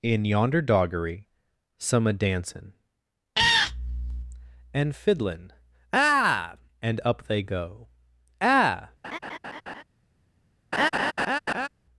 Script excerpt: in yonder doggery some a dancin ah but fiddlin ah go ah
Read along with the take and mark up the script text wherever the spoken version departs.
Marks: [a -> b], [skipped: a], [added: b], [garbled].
in yonder doggery some a dancin ah [but -> and] fiddlin ah [added: and up they] go ah